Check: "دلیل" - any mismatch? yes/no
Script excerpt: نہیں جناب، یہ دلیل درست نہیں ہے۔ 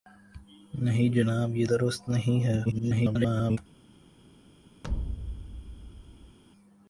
yes